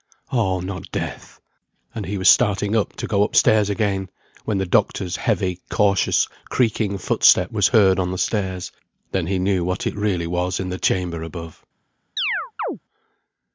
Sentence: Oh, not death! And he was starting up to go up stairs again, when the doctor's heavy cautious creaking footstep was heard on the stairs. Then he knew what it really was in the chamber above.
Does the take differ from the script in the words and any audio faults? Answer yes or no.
yes